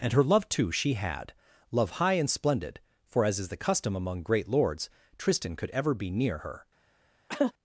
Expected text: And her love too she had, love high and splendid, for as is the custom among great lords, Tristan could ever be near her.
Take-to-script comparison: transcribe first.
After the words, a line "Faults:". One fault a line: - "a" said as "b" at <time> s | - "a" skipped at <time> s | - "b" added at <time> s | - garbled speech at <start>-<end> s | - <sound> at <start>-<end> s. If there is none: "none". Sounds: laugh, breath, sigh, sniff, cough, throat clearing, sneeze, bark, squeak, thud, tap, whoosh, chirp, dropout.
And her love too she had, love high and splendid, for as is the custom among great lords, Tristan could ever be near her.
Faults:
- cough at 7.3-7.5 s